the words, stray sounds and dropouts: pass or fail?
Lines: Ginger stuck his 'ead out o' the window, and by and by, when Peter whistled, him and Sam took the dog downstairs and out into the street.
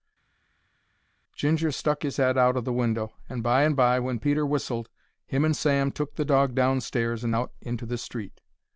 pass